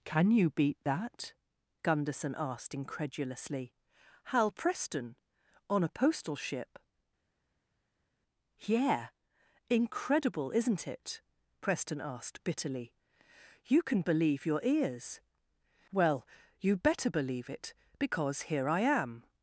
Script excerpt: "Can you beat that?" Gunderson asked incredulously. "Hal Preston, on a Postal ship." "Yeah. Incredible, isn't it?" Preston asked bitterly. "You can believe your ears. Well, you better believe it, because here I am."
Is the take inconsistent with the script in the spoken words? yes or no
no